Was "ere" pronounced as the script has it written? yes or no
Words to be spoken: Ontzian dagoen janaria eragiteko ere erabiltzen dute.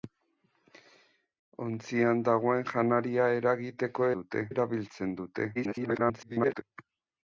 no